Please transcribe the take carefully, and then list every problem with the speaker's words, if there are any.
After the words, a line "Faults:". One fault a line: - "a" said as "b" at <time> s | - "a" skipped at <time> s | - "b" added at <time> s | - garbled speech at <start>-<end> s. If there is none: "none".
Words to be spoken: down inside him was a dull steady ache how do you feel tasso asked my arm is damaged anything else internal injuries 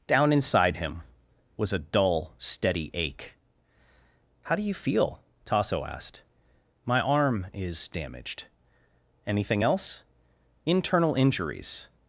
down inside him was a dull steady ache how do you feel tasso asked my arm is damaged anything else internal injuries
Faults:
none